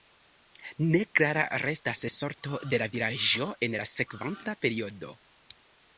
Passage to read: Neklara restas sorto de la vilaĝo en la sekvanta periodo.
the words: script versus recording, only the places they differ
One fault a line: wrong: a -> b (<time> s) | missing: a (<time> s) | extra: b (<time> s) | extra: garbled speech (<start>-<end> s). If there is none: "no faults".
no faults